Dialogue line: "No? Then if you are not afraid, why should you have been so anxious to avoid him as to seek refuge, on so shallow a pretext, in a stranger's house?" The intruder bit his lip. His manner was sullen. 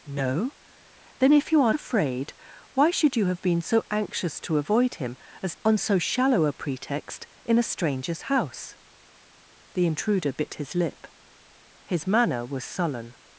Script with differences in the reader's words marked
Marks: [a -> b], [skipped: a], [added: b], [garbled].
"No? Then if you are [skipped: not] afraid, why should you have been so anxious to avoid him as [skipped: to seek refuge,] on so shallow a pretext, in a stranger's house?" The intruder bit his lip. His manner was sullen.